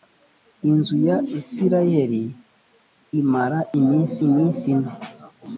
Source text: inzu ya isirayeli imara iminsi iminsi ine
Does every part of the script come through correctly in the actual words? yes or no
yes